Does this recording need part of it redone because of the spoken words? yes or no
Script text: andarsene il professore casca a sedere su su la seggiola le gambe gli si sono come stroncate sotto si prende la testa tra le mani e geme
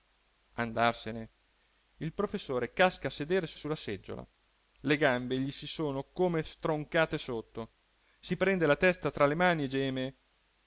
no